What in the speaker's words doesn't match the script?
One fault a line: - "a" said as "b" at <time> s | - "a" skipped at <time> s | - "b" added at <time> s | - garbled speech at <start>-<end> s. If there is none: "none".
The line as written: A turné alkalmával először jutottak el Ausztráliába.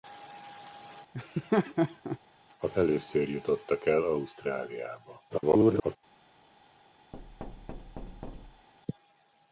- "turné alkalmával" skipped at 2.7 s
- garbled speech at 5.3-6.0 s